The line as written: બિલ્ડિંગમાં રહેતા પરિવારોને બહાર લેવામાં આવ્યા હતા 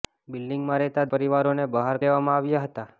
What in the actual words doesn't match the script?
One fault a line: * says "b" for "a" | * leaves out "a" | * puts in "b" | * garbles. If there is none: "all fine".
all fine